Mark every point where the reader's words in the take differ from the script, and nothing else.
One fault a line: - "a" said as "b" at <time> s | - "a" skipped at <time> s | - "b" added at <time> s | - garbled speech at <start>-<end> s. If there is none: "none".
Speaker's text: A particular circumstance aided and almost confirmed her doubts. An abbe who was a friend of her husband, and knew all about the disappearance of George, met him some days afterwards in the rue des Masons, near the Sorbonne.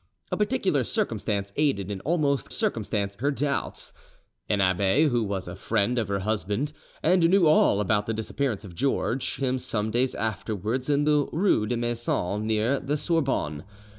- "confirmed" said as "circumstance" at 2.5 s
- "met" skipped at 9.4 s